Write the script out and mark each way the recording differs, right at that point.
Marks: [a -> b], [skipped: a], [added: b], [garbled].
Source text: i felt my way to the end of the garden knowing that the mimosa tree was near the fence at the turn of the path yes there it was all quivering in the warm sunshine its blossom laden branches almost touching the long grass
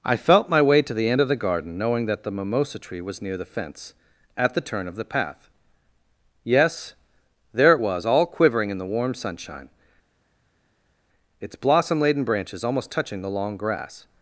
i felt my way to the end of the garden knowing that the mimosa tree was near the fence at the turn of the path yes there it was all quivering in the warm sunshine its blossom laden branches almost touching the long grass